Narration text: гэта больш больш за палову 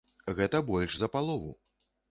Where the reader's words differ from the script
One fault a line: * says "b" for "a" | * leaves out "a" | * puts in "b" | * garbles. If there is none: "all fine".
* leaves out "больш"